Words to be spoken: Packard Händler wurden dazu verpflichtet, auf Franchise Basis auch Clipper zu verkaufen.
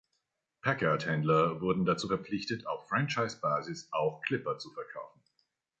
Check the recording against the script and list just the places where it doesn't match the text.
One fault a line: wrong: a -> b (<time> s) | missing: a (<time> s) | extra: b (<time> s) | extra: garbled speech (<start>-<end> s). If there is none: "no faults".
no faults